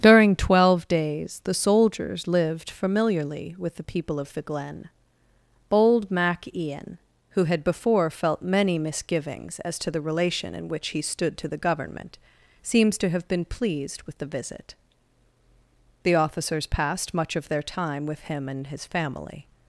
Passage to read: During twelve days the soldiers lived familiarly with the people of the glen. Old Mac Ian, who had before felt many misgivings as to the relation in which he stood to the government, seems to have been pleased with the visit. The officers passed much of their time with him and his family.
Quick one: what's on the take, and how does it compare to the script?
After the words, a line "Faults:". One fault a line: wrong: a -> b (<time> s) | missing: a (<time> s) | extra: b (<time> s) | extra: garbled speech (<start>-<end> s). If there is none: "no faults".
During twelve days the soldiers lived familiarly with the people of the glen. Bold Mac Ian, who had before felt many misgivings as to the relation in which he stood to the government, seems to have been pleased with the visit. The officers passed much of their time with him and his family.
Faults:
wrong: Old -> Bold (5.7 s)